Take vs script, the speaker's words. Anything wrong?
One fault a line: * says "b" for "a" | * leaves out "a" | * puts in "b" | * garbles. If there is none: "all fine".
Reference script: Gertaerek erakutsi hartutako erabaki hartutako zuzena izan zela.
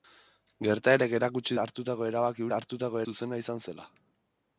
all fine